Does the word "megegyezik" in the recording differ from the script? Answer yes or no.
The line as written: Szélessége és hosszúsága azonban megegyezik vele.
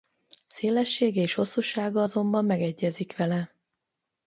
no